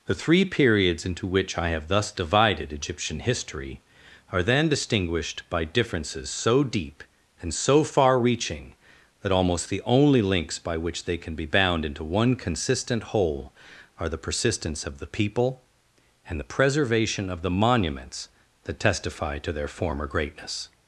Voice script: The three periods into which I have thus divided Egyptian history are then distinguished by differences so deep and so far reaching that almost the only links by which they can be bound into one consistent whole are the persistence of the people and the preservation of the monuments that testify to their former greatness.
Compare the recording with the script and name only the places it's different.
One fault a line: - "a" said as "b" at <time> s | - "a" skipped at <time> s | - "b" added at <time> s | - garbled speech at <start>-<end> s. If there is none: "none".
none